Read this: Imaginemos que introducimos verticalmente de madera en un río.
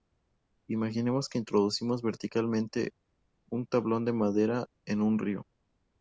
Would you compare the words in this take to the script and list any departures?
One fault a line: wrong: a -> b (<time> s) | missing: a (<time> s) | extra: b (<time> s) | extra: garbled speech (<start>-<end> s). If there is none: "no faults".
extra: un tablón (3.5 s)